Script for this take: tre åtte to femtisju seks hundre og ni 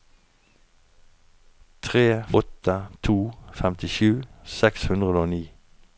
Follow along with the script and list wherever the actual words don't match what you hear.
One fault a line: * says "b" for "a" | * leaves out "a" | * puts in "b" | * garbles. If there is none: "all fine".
all fine